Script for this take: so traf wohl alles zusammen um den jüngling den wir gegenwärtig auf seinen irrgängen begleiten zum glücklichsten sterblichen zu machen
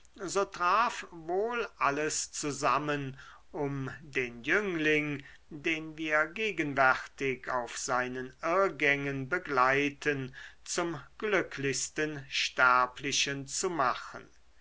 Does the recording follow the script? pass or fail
pass